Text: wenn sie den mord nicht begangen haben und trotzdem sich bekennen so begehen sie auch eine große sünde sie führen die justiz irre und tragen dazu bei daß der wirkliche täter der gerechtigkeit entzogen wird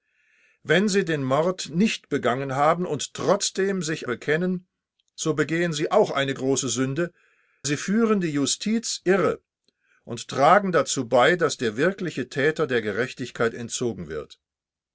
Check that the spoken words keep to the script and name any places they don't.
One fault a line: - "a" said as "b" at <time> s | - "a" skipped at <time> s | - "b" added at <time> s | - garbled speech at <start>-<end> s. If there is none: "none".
none